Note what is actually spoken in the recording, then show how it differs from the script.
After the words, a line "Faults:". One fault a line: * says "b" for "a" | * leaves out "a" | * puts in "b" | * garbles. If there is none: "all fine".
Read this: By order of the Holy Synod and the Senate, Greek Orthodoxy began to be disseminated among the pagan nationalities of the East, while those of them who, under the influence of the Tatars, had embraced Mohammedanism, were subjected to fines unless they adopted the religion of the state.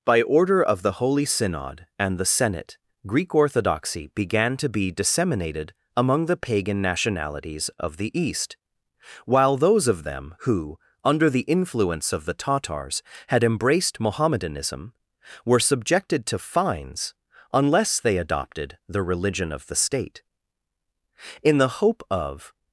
By order of the Holy Synod and the Senate, Greek Orthodoxy began to be disseminated among the pagan nationalities of the East, while those of them who, under the influence of the Tatars, had embraced Mohammedanism, were subjected to fines unless they adopted the religion of the state. In the hope of
Faults:
* puts in "In the hope of"